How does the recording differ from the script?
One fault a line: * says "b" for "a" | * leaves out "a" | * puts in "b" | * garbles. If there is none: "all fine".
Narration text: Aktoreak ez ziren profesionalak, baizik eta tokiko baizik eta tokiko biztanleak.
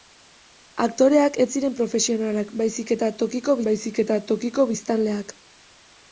all fine